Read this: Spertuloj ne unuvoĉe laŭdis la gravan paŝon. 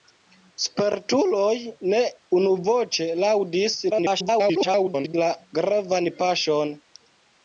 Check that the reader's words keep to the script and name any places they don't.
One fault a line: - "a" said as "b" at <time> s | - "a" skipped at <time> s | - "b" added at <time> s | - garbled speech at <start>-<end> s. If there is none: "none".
- garbled speech at 3.9-5.1 s